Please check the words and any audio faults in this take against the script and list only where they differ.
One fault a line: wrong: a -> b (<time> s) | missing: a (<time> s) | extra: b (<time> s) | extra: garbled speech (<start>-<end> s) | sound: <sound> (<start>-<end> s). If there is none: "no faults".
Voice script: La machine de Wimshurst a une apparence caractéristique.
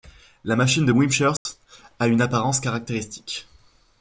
sound: dropout (1.4-1.5 s)